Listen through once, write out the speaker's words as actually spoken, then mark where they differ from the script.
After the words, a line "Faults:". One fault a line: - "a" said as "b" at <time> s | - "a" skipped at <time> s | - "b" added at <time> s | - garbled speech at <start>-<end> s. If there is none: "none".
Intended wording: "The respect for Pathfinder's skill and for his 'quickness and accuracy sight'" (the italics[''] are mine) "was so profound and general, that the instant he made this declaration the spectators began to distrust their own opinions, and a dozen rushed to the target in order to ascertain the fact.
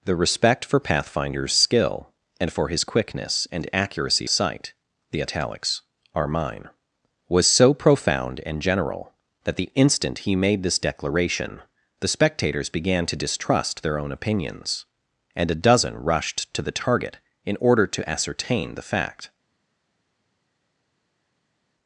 "The respect for Pathfinder's skill and for his 'quickness and accuracy sight'" (the italics[''] are mine) "was so profound and general, that the instant he made this declaration the spectators began to distrust their own opinions, and a dozen rushed to the target in order to ascertain the fact.
Faults:
none